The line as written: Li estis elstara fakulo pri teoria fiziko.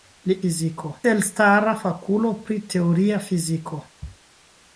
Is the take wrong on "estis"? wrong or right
wrong